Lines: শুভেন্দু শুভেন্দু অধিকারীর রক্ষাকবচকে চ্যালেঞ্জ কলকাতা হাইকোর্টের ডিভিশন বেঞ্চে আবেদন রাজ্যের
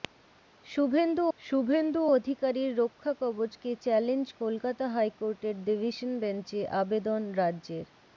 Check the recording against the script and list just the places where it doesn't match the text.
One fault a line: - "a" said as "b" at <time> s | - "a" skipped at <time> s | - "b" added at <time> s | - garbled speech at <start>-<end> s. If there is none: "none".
none